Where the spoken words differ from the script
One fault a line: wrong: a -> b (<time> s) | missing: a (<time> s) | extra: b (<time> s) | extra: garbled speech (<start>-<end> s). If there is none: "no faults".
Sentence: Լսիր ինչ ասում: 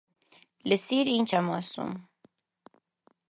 extra: եմ (1.4 s)